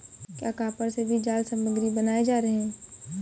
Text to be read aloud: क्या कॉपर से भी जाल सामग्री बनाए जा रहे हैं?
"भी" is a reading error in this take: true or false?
false